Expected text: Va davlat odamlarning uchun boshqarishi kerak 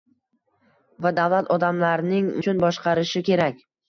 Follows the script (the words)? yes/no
yes